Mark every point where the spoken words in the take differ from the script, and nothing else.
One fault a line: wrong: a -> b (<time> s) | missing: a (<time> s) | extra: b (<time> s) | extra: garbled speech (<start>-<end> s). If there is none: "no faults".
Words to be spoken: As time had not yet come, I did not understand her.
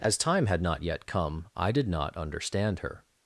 no faults